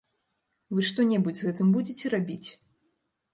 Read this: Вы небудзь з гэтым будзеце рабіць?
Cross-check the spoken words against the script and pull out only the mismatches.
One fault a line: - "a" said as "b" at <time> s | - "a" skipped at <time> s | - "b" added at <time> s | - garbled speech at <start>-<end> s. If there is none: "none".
- "што" added at 0.9 s